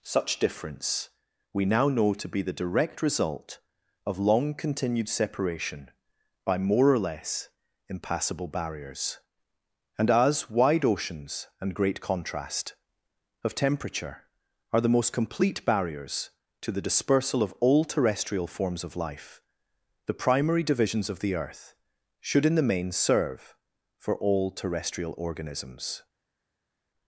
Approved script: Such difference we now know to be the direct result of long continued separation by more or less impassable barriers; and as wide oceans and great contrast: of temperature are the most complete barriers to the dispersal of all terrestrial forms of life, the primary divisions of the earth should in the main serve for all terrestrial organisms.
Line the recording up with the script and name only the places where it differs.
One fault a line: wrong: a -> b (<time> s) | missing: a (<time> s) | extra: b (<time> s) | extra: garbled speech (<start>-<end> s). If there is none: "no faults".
no faults